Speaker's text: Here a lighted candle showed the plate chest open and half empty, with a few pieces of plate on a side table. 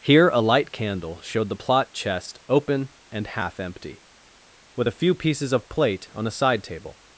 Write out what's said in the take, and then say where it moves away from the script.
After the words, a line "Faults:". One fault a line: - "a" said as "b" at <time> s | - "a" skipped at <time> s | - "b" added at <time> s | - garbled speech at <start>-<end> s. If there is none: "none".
Here a light candle showed the plot chest open and half empty, with a few pieces of plate on a side table.
Faults:
- "lighted" said as "light" at 0.4 s
- "plate" said as "plot" at 1.6 s